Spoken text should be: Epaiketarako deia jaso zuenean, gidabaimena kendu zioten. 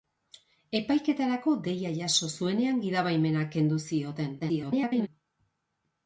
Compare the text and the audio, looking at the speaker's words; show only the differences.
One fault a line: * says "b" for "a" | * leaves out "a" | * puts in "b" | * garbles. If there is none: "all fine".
* garbles